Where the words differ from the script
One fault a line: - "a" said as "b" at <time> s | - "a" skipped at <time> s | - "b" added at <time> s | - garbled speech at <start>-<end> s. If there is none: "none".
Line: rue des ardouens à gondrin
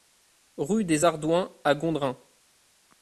none